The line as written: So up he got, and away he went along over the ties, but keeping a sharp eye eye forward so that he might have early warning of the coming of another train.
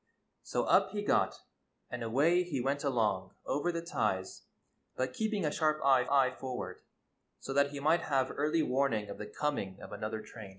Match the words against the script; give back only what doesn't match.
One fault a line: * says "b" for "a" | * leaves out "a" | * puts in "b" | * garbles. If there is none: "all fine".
all fine